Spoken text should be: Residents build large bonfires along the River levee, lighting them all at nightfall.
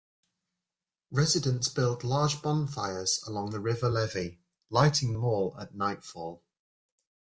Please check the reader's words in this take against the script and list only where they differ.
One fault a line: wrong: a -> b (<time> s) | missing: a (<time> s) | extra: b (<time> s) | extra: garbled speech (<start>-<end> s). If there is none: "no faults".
no faults